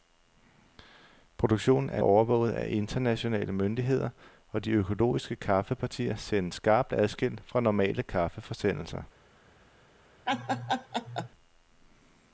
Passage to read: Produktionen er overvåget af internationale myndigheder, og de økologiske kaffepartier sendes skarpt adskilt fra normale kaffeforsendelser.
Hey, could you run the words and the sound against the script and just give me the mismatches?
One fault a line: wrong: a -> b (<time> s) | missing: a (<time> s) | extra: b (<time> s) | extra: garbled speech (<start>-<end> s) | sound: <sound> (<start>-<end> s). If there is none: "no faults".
sound: laugh (10.3-11.3 s)